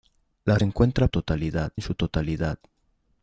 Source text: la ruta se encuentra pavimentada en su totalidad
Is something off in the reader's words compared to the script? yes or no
yes